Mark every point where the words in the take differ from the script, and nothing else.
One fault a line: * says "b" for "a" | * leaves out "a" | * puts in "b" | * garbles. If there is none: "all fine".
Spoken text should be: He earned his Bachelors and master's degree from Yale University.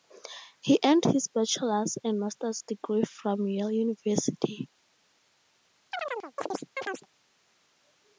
all fine